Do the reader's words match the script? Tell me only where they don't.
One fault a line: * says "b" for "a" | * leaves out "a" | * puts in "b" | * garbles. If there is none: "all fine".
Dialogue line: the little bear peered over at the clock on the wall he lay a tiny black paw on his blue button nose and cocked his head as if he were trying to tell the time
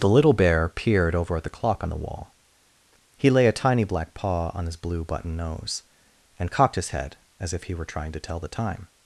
all fine